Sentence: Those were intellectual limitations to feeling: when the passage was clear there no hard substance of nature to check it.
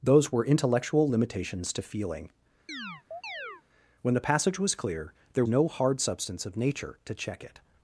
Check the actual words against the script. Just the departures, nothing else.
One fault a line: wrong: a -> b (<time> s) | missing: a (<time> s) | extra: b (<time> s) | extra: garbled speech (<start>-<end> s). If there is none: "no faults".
no faults